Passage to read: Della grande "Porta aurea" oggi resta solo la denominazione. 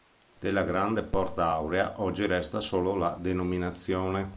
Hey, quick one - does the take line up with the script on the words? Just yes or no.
yes